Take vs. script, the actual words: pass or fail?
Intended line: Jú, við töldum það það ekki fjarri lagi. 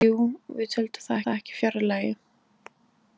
pass